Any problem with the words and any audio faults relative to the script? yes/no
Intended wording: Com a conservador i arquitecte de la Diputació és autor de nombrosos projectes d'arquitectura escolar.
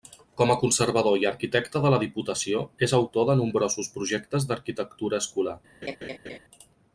yes